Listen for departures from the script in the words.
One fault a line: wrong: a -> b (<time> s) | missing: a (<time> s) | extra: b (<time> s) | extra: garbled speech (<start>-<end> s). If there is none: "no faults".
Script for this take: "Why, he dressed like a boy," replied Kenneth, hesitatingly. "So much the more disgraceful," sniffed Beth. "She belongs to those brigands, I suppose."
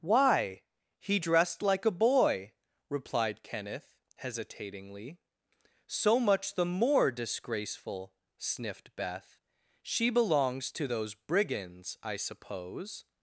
no faults